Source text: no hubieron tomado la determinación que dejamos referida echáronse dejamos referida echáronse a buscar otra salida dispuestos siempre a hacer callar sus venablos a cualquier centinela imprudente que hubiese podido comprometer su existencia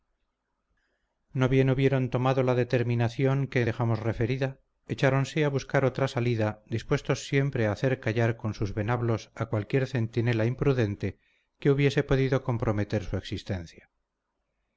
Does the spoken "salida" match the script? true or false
true